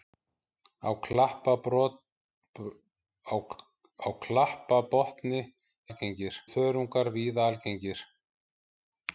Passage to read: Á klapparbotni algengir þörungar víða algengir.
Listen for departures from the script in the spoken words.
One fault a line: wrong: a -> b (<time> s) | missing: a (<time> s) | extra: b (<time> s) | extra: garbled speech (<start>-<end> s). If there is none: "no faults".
no faults